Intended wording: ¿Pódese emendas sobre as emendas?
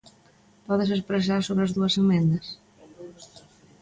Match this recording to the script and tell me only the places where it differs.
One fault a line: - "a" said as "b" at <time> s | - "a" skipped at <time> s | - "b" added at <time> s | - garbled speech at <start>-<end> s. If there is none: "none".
- "emendas" said as "expresar" at 1.0 s
- "dúas" added at 1.8 s